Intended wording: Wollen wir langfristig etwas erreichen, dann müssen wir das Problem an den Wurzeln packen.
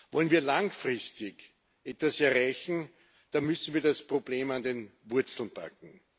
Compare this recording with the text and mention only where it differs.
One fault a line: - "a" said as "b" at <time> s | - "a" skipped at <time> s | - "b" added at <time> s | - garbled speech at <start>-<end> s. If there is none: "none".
none